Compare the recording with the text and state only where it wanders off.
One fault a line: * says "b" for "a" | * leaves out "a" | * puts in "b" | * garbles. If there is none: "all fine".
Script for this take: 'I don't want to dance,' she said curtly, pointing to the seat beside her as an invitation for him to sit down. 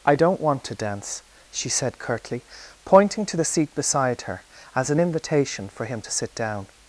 all fine